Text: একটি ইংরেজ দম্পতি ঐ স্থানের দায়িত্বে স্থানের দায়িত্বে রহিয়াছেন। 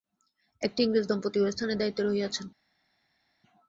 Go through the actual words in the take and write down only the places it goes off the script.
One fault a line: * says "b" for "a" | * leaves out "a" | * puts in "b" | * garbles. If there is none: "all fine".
* leaves out "স্থানের দায়িত্বে"